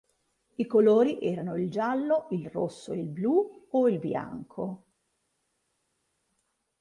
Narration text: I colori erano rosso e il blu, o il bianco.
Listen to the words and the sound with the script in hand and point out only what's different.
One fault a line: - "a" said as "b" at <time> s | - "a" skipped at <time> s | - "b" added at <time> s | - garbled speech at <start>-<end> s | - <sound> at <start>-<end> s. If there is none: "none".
- "il giallo il" added at 1.6 s